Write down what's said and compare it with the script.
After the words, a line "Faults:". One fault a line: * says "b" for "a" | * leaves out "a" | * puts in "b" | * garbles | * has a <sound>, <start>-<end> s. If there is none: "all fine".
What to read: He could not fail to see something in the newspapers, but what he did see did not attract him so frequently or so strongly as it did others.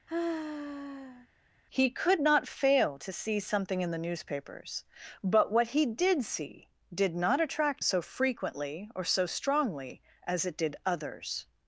He could not fail to see something in the newspapers, but what he did see did not attract so frequently or so strongly as it did others.
Faults:
* has a sigh, 0.1-1.3 s
* leaves out "him"